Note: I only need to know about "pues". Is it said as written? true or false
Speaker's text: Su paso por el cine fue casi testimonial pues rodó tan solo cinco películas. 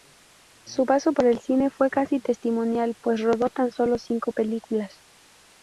true